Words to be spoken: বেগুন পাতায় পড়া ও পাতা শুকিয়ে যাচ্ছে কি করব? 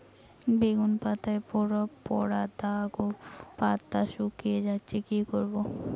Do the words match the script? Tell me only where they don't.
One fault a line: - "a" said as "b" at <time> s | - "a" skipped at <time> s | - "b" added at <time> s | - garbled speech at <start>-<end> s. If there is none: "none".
- "দাগ" added at 2.6 s